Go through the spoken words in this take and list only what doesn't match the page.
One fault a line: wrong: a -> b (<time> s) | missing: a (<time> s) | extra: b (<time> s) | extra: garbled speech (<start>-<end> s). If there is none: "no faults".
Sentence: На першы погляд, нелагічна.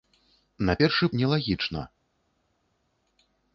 missing: погляд (1.1 s)